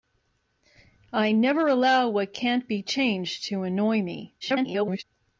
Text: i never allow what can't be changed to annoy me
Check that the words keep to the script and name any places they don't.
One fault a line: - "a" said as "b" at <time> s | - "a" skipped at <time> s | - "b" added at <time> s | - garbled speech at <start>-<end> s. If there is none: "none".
- garbled speech at 4.4-5.0 s